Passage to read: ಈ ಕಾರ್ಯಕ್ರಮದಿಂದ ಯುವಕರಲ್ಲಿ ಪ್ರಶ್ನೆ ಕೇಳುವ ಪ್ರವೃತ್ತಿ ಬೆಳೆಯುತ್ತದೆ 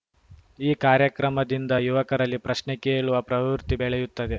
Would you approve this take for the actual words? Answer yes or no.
yes